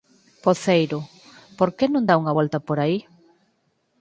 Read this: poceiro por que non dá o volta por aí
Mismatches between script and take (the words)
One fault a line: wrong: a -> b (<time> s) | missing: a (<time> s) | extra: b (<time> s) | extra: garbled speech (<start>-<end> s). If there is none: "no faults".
wrong: o -> unha (2.2 s)